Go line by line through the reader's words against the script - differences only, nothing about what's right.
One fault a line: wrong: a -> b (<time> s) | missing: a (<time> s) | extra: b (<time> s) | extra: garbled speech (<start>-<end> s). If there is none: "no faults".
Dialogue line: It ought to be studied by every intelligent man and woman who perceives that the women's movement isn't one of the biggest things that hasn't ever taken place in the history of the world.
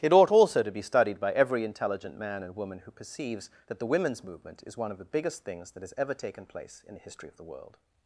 extra: also (0.3 s)
wrong: isn't -> is (4.6 s)
wrong: hasn't -> has (5.8 s)